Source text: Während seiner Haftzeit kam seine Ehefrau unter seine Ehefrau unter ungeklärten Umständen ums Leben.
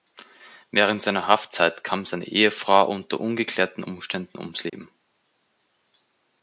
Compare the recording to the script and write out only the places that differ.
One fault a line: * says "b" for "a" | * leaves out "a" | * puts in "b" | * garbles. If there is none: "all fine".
* leaves out "seine Ehefrau unter"